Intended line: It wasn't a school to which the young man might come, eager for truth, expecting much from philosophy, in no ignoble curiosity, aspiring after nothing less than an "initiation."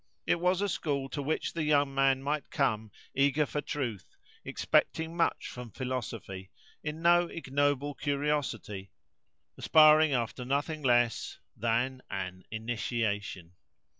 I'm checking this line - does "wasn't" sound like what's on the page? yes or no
no